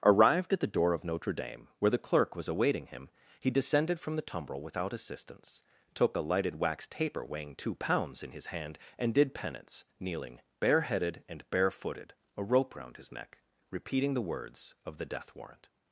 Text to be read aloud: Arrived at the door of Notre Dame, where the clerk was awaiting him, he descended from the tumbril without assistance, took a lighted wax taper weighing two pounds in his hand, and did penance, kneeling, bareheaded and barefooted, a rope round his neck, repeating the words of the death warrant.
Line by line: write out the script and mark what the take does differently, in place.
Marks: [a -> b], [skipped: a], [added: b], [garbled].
Arrived at the door of Notre Dame, where the clerk was awaiting him, he descended from the tumbril without assistance, took a lighted wax taper weighing two pounds in his hand, and did penance, kneeling, bareheaded and barefooted, a rope round his neck, repeating the words of the death warrant.